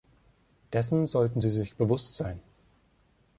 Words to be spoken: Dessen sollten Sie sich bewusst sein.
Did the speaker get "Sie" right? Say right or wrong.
right